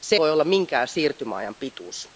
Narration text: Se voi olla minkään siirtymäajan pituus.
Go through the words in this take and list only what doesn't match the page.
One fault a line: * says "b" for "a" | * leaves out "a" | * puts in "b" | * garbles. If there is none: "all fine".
all fine